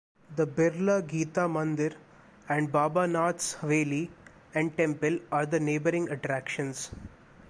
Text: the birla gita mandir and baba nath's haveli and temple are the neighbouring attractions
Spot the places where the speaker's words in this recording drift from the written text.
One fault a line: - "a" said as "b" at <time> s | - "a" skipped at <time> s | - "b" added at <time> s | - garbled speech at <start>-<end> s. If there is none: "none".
none